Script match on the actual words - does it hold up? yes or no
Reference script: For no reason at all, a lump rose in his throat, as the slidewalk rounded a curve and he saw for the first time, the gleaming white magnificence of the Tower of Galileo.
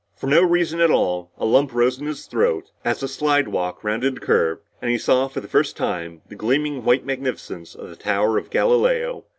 yes